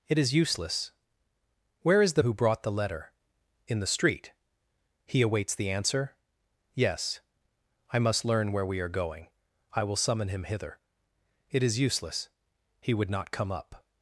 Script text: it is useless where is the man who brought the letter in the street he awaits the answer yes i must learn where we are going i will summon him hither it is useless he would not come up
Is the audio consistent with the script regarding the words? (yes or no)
no